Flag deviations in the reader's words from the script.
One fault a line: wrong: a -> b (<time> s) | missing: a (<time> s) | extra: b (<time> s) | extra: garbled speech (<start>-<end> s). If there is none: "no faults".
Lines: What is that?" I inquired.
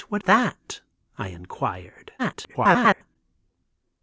missing: is (0.2 s)
extra: garbled speech (2.2-3.2 s)